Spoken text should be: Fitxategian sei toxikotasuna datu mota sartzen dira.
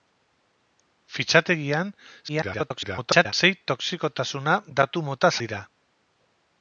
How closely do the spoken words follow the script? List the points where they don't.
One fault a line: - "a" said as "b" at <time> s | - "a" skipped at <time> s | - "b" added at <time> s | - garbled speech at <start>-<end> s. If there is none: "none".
- garbled speech at 2.3-3.3 s
- "sartzen" skipped at 5.3 s